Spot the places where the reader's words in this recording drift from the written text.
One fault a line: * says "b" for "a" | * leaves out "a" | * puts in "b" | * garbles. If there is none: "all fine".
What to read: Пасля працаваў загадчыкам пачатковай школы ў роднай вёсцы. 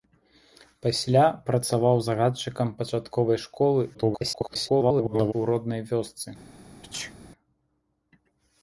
* garbles